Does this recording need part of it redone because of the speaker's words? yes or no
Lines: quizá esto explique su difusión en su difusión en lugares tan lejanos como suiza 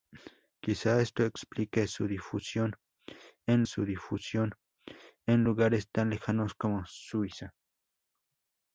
no